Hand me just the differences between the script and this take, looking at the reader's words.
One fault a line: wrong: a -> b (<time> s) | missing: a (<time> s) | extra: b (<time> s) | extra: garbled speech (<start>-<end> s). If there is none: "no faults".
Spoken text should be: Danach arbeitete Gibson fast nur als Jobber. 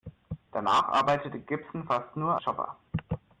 missing: als (2.4 s)